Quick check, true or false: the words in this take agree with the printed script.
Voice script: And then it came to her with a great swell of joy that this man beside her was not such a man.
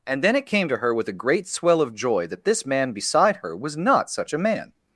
true